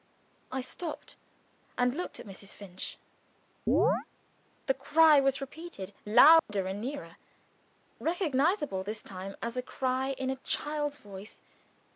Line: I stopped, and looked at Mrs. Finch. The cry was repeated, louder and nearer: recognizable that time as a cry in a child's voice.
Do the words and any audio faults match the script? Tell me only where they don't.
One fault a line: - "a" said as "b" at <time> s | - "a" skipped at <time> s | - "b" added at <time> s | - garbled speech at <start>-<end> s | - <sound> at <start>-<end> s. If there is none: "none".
- chirp at 3.7-4.1 s
- dropout at 6.4-6.5 s
- "that" said as "this" at 8.8 s